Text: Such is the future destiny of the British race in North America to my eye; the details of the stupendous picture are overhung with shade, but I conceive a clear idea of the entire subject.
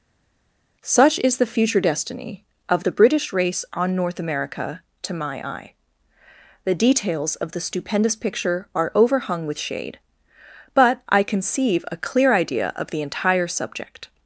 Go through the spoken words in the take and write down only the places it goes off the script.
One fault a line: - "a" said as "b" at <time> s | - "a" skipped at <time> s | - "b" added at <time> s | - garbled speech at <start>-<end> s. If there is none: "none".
- "in" said as "on" at 3.7 s